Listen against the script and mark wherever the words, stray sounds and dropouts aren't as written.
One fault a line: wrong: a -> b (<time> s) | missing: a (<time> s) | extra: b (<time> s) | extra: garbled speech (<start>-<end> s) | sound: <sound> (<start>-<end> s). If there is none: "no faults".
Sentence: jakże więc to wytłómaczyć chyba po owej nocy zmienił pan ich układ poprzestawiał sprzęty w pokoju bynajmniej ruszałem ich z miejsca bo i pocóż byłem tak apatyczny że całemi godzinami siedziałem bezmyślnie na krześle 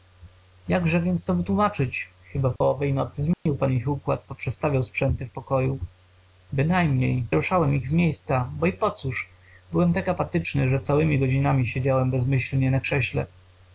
sound: dropout (2.6-2.6 s)
sound: dropout (3.3-3.5 s)